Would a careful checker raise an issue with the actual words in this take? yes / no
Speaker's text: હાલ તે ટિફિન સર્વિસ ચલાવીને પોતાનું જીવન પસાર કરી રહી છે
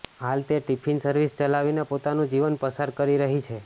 no